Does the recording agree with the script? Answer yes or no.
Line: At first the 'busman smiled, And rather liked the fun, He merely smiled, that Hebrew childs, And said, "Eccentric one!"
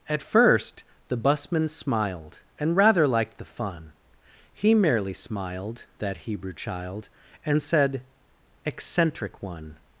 no